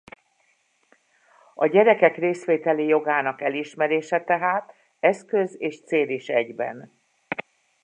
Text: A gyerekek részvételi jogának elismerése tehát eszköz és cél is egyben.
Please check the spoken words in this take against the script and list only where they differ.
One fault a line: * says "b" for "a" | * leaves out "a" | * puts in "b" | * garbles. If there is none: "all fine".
all fine